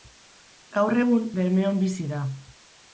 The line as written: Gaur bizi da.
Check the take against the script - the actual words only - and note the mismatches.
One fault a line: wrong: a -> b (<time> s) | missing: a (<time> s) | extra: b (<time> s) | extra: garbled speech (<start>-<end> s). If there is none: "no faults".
extra: egun Bermeon (1.0 s)